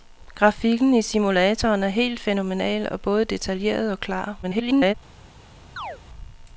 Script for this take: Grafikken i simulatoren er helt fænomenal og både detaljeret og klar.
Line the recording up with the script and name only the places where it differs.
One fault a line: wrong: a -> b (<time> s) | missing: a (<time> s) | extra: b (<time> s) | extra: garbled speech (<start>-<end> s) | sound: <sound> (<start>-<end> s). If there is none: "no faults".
extra: garbled speech (4.4-4.9 s)
sound: chirp (5.8-6.0 s)